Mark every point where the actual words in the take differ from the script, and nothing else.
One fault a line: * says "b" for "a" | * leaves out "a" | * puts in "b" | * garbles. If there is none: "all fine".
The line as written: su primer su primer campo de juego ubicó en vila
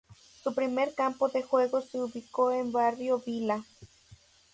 * leaves out "su primer"
* puts in "se"
* puts in "barrio"